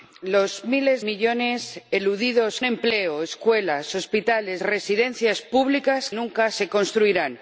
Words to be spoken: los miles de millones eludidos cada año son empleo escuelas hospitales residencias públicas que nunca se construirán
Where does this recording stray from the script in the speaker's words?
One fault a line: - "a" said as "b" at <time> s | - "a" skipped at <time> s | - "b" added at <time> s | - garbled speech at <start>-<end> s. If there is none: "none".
- "de" skipped at 1.0 s
- "cada año son" skipped at 2.6 s
- "que" skipped at 6.1 s